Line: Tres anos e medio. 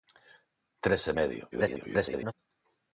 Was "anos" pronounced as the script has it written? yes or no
no